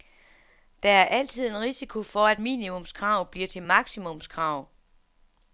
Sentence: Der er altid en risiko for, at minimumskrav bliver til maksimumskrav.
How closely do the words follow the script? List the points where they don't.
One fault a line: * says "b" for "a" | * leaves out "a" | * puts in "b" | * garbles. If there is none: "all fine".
all fine